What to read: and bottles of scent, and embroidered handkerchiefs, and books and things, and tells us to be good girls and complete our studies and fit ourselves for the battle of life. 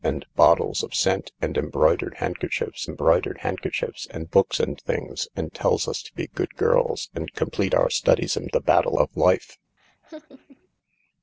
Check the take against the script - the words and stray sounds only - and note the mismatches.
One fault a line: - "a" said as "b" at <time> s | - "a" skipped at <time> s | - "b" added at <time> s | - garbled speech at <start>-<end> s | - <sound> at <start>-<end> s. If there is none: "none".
- "embroidered handkerchiefs" added at 2.8 s
- "fit ourselves for" skipped at 8.5 s
- laugh at 9.8-10.7 s